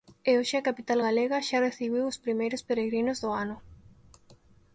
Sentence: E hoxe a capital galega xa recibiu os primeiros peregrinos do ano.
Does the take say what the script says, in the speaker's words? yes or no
yes